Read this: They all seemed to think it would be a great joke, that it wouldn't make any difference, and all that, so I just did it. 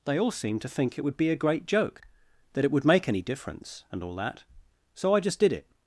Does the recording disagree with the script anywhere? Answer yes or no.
yes